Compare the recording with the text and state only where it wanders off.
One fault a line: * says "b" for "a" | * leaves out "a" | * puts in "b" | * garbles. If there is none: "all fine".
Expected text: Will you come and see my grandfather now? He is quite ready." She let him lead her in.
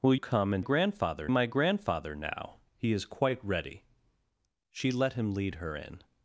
* leaves out "you"
* says "grandfather" for "see"